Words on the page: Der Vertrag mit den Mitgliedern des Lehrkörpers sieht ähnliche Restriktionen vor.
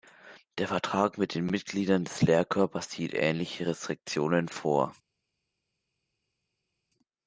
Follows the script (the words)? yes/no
yes